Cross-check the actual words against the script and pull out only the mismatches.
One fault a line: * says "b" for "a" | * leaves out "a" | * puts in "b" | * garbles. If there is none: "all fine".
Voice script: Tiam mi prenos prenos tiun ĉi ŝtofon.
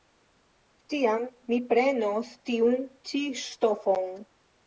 * leaves out "prenos"